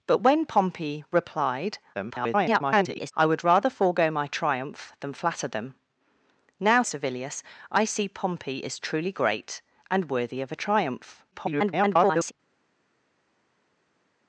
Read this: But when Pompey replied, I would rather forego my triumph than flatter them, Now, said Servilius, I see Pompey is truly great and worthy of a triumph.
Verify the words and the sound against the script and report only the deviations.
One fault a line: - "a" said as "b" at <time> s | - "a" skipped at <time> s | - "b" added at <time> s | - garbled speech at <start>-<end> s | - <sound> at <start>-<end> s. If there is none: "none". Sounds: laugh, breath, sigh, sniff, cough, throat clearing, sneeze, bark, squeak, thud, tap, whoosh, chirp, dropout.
- garbled speech at 1.9-3.1 s
- "said" skipped at 6.8 s
- garbled speech at 11.3-12.3 s